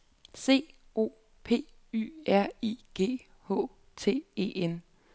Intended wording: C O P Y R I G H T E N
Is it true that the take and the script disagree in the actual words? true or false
false